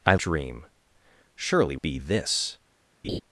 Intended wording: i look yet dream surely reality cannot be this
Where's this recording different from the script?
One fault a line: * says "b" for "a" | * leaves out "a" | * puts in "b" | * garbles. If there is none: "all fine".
* leaves out "look yet"
* leaves out "reality cannot"